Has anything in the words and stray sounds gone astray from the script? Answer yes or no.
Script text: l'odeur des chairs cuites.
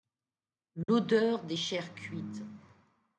yes